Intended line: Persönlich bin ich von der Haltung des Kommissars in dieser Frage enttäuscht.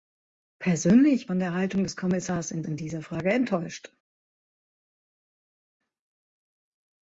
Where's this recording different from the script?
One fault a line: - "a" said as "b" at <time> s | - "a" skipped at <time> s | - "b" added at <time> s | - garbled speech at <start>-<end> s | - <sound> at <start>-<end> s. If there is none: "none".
- "bin ich" skipped at 1.3 s
- "in" added at 2.6 s